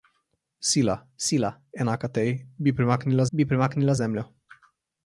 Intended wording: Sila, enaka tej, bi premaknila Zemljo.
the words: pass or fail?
fail